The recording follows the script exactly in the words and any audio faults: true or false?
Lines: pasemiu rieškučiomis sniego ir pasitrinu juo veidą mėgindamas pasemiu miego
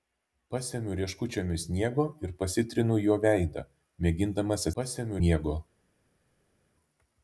true